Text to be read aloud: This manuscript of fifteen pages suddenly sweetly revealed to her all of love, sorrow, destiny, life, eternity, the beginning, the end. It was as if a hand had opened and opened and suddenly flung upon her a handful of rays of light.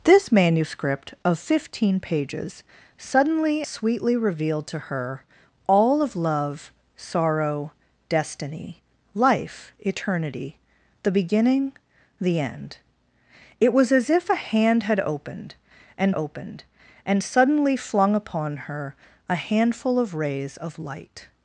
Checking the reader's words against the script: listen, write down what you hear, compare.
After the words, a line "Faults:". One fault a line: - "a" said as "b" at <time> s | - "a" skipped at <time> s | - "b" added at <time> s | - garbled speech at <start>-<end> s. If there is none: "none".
This manuscript of fifteen pages suddenly sweetly revealed to her all of love, sorrow, destiny, life, eternity, the beginning, the end. It was as if a hand had opened and opened and suddenly flung upon her a handful of rays of light.
Faults:
none